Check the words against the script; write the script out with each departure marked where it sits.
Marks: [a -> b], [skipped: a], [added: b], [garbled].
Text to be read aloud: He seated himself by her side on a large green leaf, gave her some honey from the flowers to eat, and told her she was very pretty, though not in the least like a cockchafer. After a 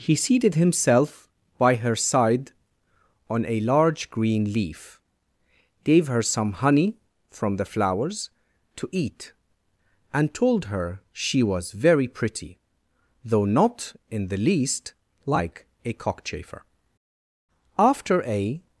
He seated himself by her side on a large green leaf, gave her some honey from the flowers to eat, and told her she was very pretty, though not in the least like a cockchafer. After a